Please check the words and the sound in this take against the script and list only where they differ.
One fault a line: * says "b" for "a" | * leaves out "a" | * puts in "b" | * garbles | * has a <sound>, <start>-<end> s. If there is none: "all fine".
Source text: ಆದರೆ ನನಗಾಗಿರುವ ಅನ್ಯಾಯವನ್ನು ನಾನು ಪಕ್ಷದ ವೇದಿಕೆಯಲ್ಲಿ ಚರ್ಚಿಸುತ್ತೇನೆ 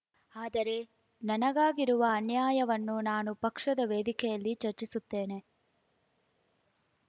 all fine